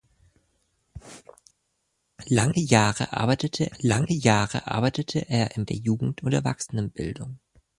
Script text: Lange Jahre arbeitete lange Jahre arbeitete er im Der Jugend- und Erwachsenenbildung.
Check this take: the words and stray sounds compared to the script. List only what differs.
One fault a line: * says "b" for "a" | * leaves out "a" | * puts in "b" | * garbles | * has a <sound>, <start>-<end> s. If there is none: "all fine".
all fine